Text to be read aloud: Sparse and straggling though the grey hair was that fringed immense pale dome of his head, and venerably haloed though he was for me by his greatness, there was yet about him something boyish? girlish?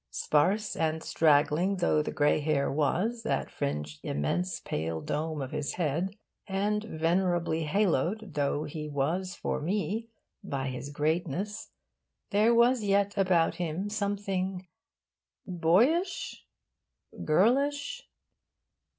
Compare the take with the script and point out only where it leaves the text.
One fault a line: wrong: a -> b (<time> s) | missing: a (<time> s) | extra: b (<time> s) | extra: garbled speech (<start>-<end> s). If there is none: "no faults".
no faults